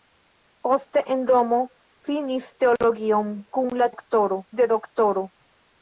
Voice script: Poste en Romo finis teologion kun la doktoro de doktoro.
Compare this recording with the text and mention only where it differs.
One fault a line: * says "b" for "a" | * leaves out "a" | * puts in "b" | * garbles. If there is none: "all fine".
all fine